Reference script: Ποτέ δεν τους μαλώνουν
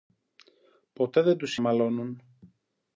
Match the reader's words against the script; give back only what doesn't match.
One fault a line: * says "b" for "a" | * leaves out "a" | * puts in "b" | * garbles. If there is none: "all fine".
all fine